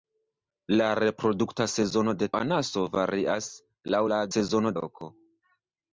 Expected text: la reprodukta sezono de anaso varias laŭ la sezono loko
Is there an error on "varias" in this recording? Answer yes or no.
no